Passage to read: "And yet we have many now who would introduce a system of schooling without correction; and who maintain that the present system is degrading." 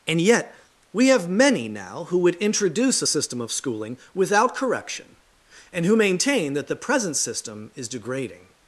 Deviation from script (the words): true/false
false